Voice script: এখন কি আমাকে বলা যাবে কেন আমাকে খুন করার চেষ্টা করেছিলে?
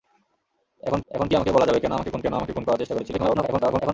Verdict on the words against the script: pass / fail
fail